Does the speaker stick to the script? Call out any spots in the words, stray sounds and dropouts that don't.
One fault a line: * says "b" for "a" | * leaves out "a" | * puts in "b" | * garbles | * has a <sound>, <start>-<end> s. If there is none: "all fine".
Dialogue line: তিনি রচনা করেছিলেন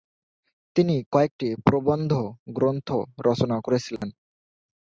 * puts in "কয়েকটি প্রবন্ধ গ্রন্থ"
* has a dropout, 4.0-4.0 s